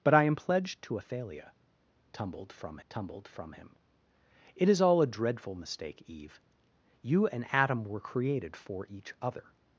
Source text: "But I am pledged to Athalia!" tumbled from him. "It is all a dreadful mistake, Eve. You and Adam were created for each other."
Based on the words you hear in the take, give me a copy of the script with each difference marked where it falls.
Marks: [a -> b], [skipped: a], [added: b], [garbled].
"But I am pledged to Athalia!" tumbled from [added: tumbled from] him. "It is all a dreadful mistake, Eve. You and Adam were created for each other."